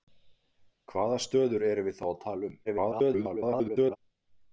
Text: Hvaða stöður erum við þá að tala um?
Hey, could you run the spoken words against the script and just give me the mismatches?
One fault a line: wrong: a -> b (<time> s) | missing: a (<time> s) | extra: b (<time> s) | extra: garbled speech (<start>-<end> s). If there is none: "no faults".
extra: garbled speech (2.6-4.0 s)